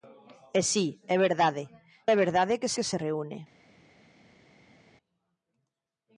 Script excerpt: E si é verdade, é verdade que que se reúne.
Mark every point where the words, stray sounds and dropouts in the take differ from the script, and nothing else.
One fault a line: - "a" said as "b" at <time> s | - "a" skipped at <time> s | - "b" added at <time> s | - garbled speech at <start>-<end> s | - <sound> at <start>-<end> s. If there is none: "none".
none